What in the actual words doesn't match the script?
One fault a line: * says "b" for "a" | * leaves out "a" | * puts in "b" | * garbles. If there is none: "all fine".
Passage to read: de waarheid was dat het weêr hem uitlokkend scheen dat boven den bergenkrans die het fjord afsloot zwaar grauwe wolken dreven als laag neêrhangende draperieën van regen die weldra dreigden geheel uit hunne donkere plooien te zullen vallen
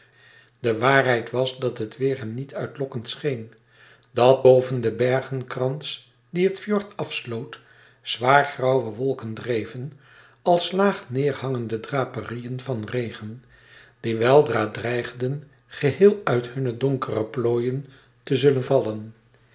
* puts in "niet"